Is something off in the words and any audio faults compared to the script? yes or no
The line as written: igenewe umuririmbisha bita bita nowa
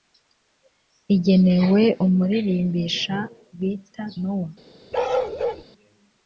yes